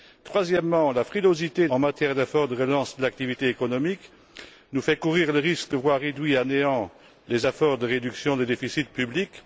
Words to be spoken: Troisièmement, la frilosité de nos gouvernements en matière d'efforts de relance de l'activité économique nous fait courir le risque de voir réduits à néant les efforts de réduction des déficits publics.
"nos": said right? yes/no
no